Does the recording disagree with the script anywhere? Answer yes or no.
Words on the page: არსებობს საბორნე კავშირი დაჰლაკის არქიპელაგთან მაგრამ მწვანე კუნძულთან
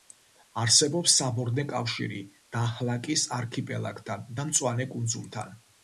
yes